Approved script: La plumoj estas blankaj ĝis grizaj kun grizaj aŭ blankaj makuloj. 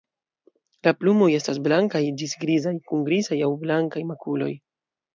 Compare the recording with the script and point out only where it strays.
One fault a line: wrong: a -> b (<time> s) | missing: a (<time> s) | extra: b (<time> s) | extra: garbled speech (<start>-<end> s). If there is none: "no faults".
no faults